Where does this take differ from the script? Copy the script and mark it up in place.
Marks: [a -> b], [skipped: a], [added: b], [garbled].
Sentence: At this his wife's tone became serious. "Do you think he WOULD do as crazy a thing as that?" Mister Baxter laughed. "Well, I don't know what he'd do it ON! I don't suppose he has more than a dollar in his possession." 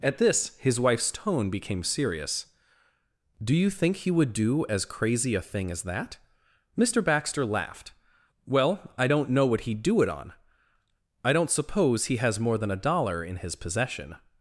At this his wife's tone became serious. "Do you think he WOULD do as crazy a thing as that?" Mister Baxter laughed. "Well, I don't know what he'd do it ON! I don't suppose he has more than a dollar in his possession."